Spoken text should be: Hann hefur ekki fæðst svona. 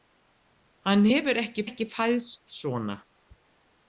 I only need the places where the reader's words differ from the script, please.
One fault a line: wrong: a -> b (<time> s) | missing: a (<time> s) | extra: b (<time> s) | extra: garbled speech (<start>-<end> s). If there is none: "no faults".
extra: ekki (1.7 s)